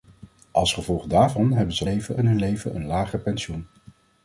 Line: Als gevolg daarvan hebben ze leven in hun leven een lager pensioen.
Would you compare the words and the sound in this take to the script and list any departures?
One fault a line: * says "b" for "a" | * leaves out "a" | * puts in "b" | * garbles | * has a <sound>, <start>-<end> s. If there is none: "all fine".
all fine